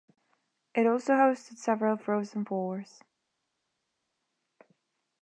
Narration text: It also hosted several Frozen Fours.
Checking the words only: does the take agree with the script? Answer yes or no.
yes